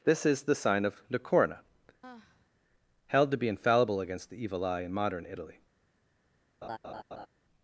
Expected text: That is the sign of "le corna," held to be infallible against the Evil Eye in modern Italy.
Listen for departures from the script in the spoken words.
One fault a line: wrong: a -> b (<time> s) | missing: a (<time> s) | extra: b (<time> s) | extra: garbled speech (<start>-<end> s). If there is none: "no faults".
wrong: That -> This (0.0 s)